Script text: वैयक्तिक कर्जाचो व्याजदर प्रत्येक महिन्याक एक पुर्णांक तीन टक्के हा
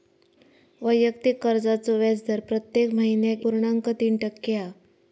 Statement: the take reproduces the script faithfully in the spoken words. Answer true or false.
false